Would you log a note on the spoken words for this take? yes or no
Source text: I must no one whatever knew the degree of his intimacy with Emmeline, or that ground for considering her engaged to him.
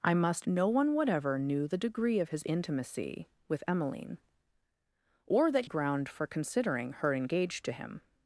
no